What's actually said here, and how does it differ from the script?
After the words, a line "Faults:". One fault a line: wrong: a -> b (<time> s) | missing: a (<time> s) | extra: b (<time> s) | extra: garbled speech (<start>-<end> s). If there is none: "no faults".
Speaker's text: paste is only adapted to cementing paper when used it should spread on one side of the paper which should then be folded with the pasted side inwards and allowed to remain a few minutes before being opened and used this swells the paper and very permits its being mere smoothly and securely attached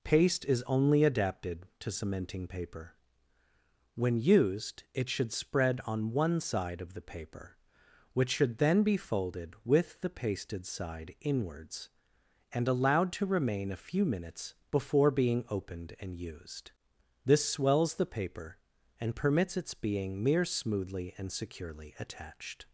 paste is only adapted to cementing paper when used it should spread on one side of the paper which should then be folded with the pasted side inwards and allowed to remain a few minutes before being opened and used this swells the paper and permits its being mere smoothly and securely attached
Faults:
missing: very (19.1 s)